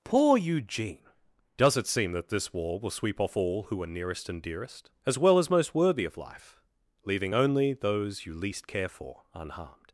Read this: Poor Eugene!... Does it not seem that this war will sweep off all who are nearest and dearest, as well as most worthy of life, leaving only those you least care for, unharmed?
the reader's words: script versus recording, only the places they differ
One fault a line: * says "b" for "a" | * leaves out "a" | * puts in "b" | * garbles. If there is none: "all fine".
* leaves out "not"